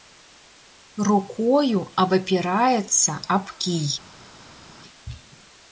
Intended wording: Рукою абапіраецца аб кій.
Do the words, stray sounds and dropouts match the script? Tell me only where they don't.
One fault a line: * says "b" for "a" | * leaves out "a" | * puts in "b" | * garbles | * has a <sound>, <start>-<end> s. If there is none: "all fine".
all fine